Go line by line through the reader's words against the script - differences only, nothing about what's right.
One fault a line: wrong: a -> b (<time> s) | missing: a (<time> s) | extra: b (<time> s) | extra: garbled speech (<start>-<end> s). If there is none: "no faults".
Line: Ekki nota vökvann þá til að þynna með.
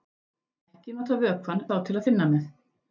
no faults